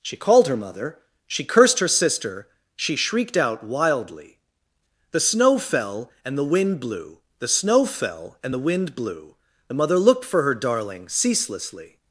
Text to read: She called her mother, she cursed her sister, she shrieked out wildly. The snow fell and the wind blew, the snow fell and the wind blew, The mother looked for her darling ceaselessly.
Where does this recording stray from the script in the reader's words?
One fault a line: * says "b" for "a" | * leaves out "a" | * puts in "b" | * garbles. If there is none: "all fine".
all fine